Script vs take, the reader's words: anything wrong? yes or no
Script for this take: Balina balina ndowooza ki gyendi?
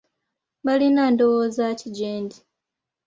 yes